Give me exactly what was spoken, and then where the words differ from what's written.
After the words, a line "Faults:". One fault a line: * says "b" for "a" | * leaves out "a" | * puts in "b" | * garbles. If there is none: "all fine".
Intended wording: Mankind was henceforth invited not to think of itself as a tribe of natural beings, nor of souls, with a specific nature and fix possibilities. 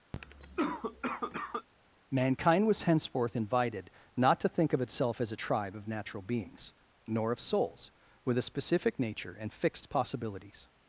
Mankind was henceforth invited not to think of itself as a tribe of natural beings, nor of souls, with a specific nature and fixed possibilities.
Faults:
* says "fixed" for "fix"